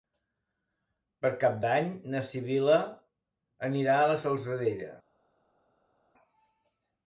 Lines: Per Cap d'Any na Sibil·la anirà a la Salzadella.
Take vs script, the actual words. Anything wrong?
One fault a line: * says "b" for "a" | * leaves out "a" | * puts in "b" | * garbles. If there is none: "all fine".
all fine